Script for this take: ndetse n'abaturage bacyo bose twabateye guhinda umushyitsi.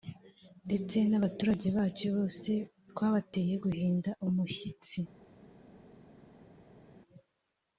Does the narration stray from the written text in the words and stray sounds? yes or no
no